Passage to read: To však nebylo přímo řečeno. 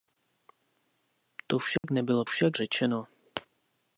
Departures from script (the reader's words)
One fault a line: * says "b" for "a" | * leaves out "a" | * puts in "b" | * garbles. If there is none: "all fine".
* says "však" for "přímo"